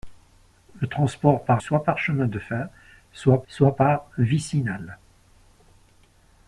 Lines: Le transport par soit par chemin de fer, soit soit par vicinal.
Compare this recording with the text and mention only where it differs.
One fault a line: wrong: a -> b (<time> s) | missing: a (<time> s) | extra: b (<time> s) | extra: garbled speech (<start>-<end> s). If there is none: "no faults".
no faults